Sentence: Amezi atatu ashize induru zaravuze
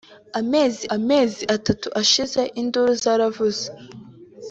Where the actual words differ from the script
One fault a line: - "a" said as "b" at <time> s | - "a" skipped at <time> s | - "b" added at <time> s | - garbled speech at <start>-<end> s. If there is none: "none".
- "amezi" added at 0.9 s